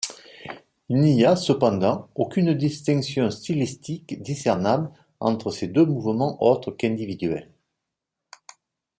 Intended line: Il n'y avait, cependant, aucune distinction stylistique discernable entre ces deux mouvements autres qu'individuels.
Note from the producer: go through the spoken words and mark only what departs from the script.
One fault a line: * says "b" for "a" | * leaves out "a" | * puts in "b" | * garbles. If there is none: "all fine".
* says "a" for "avait"